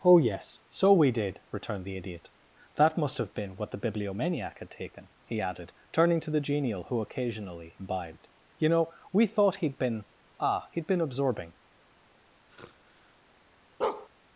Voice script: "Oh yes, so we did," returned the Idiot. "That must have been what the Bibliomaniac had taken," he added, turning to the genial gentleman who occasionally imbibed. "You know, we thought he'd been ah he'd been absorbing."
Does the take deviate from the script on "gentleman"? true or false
true